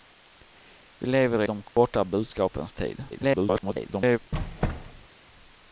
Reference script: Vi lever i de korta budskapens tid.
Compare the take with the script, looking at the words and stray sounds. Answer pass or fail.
fail